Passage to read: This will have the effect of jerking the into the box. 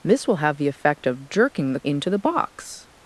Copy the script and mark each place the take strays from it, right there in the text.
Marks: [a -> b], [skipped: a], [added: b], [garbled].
This will have the effect of jerking the into the box.